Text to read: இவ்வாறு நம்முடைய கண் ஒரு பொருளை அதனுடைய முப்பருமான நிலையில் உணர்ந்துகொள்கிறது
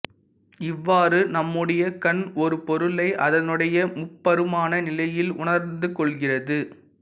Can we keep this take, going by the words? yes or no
yes